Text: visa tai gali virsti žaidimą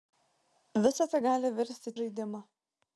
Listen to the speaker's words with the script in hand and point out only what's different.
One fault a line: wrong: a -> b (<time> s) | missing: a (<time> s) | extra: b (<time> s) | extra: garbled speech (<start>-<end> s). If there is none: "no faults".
no faults